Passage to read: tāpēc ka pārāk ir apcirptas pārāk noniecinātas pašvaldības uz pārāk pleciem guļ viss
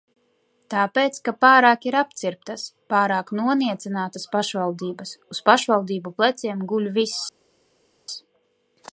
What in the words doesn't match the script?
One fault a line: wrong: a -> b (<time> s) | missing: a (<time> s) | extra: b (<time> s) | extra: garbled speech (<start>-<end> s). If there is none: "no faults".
wrong: pārāk -> pašvaldību (5.5 s)